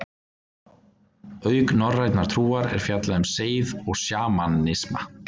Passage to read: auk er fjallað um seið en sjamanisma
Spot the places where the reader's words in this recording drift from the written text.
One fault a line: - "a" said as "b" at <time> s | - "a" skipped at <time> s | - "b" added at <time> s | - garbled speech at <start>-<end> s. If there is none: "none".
- "norrænnar trúar" added at 1.8 s
- "en" said as "og" at 3.9 s